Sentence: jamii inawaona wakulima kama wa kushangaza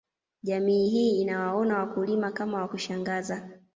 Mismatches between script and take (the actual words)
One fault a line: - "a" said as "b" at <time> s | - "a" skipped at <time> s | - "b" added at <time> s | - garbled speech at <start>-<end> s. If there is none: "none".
- "hii" added at 0.9 s